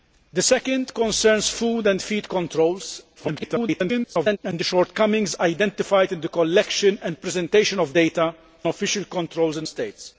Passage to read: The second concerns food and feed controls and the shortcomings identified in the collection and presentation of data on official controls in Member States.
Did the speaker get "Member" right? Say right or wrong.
wrong